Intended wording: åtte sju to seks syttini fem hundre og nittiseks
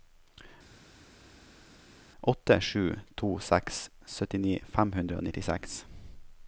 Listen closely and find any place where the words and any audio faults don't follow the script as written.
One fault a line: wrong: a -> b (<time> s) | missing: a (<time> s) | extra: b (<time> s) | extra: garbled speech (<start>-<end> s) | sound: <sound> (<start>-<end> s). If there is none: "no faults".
no faults